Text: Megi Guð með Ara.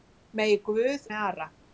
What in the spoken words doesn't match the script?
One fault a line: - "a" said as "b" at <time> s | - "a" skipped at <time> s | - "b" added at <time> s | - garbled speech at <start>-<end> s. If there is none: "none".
none